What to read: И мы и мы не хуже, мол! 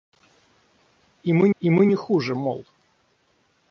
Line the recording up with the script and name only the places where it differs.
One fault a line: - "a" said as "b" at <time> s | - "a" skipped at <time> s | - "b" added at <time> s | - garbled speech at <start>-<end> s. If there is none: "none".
none